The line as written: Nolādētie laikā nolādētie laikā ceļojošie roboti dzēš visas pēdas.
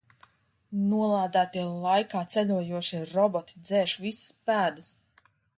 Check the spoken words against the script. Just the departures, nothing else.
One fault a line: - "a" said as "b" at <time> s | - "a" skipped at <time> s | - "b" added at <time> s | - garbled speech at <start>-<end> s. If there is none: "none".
- "nolādētie laikā" skipped at 2.2 s